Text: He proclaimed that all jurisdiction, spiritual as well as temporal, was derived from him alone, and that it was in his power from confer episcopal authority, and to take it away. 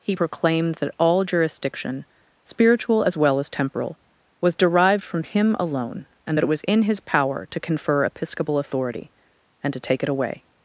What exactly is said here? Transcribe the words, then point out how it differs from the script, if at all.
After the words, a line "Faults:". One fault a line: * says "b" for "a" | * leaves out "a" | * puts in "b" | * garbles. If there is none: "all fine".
He proclaimed that all jurisdiction, spiritual as well as temporal, was derived from him alone, and that it was in his power to confer episcopal authority, and to take it away.
Faults:
* says "to" for "from"